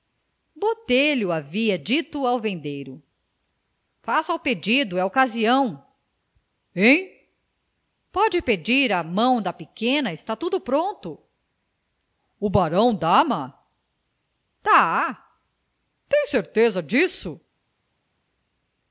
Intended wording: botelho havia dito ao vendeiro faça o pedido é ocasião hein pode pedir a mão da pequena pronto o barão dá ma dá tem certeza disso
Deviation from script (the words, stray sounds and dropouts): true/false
true